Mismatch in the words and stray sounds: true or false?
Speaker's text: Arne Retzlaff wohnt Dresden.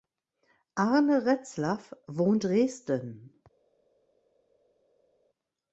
false